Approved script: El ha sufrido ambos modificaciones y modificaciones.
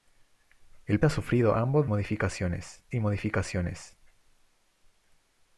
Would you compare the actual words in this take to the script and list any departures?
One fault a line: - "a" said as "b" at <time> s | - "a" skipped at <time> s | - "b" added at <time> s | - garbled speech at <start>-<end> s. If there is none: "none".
none